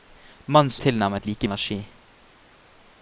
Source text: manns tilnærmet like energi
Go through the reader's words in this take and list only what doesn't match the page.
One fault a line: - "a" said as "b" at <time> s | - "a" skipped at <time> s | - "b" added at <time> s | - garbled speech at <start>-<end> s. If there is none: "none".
none